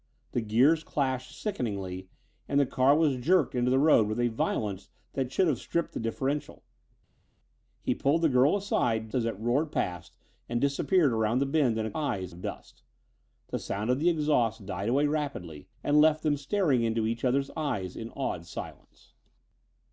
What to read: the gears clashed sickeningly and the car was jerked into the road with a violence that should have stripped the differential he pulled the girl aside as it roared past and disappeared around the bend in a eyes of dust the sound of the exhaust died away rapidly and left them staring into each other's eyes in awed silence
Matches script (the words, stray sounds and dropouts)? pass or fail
pass